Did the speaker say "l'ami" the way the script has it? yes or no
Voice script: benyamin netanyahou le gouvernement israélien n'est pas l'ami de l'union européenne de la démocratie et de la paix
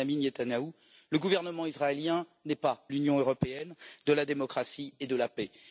no